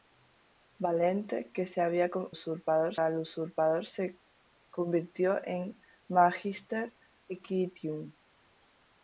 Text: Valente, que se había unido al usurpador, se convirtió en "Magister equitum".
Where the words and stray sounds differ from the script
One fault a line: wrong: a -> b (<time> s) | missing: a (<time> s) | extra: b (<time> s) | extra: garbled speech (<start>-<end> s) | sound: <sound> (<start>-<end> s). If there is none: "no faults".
wrong: unido -> usurpador (2.3 s)